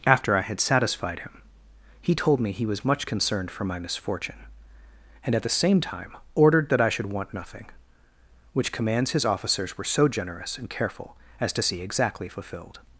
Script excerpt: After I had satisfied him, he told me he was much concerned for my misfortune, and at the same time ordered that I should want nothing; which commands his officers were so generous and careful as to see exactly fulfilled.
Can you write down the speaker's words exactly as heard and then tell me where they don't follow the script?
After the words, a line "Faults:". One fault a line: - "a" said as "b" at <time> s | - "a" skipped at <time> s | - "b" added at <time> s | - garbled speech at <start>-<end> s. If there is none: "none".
After I had satisfied him, he told me he was much concerned for my misfortune, and at the same time ordered that I should want nothing; which commands his officers were so generous and careful as to see exactly fulfilled.
Faults:
none